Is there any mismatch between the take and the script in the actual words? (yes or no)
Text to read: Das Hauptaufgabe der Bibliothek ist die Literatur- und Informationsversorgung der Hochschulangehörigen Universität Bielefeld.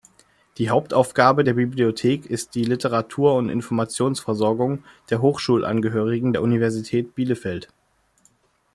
yes